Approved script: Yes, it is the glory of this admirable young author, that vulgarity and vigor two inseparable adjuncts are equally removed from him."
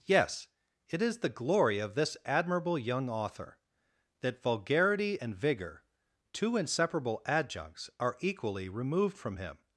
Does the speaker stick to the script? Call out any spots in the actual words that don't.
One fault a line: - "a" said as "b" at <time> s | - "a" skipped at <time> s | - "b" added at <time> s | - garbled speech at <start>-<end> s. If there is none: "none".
none